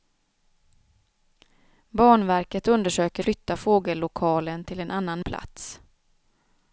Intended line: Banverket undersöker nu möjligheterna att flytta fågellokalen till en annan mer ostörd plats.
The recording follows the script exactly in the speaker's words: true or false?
false